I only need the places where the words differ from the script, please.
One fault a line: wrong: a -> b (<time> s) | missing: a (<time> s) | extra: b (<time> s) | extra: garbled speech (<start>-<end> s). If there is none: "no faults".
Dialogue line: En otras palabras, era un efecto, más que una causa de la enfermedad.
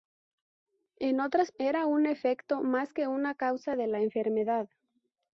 missing: palabras (1.5 s)